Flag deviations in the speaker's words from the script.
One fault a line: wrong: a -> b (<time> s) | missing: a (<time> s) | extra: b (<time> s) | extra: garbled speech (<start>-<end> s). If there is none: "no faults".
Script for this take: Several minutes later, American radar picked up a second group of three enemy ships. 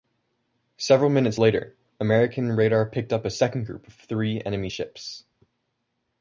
no faults